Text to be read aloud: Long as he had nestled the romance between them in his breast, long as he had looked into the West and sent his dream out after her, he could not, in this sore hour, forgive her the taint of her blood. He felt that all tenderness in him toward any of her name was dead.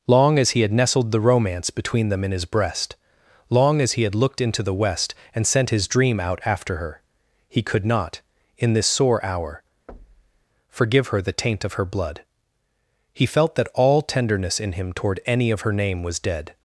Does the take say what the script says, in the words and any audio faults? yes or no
no